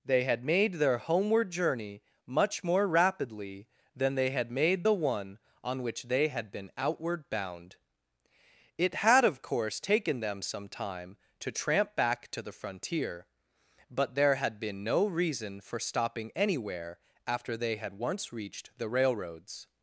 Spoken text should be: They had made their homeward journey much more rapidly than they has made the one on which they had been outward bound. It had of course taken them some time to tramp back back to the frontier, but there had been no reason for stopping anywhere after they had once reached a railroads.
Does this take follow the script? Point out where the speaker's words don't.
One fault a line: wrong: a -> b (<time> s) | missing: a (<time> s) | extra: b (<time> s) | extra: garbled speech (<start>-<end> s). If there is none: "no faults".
wrong: has -> had (4.3 s)
missing: back (12.3 s)
wrong: a -> the (18.8 s)